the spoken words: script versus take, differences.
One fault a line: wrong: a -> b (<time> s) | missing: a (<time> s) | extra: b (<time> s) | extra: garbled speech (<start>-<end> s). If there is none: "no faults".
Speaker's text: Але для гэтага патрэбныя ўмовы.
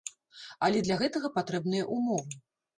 no faults